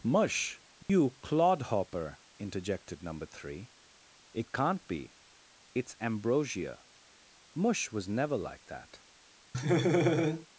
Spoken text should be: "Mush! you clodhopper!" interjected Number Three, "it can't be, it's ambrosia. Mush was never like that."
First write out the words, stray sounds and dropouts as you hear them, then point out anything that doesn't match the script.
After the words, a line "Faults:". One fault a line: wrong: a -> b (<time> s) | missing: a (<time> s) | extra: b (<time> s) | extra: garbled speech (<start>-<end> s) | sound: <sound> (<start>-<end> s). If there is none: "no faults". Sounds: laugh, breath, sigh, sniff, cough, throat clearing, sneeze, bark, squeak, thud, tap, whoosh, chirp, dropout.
"Mush! you clodhopper!" interjected Number Three, "it can't be, it's ambrosia. Mush was never like that."
Faults:
sound: dropout (0.8-0.9 s)
sound: laugh (9.5-10.5 s)